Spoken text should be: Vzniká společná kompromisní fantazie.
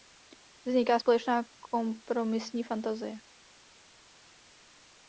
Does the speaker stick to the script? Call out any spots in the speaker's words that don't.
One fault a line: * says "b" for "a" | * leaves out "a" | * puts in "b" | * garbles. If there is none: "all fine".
all fine